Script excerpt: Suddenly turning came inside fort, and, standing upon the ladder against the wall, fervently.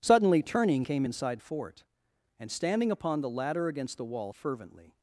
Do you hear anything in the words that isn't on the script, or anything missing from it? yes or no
no